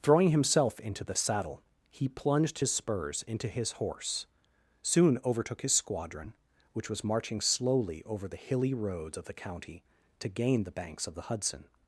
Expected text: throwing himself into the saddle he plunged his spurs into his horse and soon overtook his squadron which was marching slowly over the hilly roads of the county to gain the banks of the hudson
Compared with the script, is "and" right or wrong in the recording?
wrong